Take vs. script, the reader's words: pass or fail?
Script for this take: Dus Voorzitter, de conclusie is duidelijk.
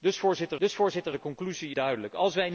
fail